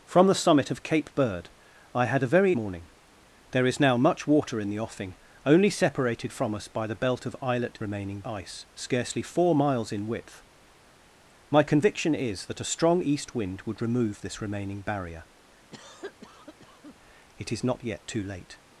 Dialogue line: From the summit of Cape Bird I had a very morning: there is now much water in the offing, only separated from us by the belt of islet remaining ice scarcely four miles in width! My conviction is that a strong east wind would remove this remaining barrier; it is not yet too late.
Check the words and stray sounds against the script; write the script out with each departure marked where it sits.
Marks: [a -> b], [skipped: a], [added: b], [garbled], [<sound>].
From the summit of Cape Bird I had a very morning: there is now much water in the offing, only separated from us by the belt of islet remaining ice scarcely four miles in width! My conviction is that a strong east wind would remove this remaining barrier; [cough] it is not yet too late.